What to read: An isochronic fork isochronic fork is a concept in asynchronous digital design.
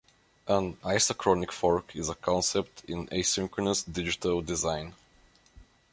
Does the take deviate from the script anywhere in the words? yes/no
yes